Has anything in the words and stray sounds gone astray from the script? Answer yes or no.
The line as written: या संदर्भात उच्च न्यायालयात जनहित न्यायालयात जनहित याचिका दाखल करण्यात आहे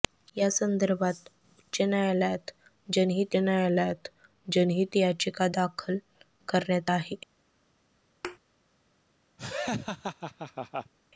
yes